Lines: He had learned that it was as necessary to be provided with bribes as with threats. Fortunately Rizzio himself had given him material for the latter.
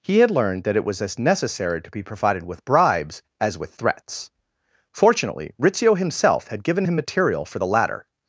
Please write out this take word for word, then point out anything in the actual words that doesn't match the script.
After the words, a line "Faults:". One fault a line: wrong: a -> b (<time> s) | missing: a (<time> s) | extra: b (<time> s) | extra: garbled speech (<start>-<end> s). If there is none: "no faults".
He had learned that it was as necessary to be provided with bribes as with threats. Fortunately Rizzio himself had given him material for the latter.
Faults:
no faults